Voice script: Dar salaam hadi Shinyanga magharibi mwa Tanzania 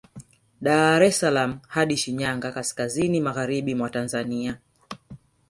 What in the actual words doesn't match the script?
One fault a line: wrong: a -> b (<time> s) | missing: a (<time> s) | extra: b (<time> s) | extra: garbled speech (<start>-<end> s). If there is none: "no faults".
extra: es (1.1 s)
extra: kaskazini (2.5 s)